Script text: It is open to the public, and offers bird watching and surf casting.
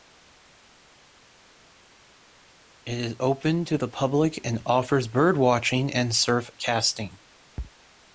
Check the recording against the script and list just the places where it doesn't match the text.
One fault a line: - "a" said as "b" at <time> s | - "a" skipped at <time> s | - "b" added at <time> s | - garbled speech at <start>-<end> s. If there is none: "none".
none